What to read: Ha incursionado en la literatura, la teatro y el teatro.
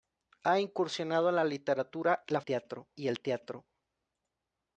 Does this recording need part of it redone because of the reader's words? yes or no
no